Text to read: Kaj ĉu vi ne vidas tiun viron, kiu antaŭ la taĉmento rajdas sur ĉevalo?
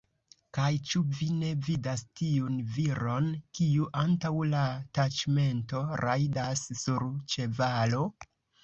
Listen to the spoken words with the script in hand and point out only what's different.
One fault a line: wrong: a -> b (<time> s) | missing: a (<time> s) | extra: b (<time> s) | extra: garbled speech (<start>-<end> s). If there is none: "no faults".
no faults